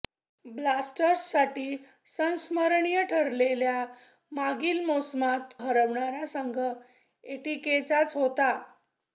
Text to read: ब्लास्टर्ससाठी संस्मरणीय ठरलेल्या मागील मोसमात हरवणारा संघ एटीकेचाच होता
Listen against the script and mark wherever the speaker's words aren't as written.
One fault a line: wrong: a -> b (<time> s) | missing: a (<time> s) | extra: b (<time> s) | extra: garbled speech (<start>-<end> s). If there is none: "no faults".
no faults